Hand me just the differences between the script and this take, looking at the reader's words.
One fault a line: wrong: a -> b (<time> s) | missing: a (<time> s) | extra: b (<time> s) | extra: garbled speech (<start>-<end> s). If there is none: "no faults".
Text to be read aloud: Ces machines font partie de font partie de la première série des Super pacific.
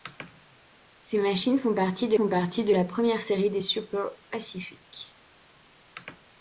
no faults